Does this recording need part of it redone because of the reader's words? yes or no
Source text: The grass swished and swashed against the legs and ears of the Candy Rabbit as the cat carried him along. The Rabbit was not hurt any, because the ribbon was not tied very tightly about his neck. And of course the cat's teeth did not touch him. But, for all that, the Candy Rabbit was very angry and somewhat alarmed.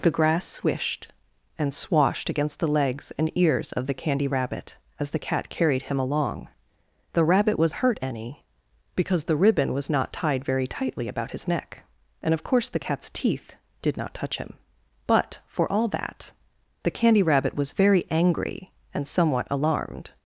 yes